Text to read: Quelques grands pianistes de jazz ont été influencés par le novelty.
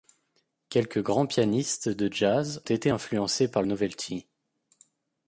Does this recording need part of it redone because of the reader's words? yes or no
yes